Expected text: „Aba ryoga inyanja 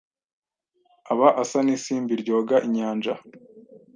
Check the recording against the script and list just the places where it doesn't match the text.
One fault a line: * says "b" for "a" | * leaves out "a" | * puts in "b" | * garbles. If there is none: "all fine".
* puts in "asa n'isimbi"